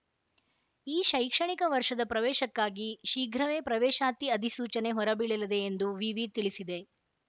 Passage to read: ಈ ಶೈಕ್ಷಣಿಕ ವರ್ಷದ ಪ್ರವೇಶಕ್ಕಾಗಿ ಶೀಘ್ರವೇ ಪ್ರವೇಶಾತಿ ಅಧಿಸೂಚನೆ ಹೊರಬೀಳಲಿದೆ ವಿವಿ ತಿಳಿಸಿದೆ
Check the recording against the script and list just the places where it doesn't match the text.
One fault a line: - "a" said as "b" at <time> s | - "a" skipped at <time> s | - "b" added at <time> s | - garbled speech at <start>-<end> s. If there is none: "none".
- "ಎಂದು" added at 5.7 s